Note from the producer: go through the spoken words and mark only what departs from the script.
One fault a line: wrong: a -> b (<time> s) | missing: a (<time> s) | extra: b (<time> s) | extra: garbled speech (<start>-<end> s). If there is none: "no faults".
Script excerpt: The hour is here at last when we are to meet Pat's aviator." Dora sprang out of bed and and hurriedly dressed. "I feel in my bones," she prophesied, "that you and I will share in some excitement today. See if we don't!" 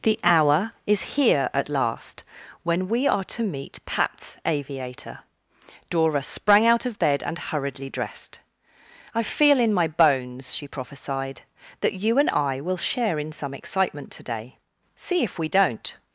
missing: and (7.4 s)